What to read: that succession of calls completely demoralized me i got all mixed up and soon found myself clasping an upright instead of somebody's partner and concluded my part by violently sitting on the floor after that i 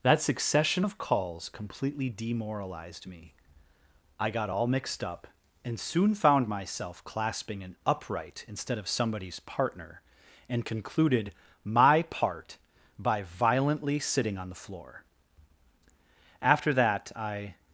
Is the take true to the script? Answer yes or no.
yes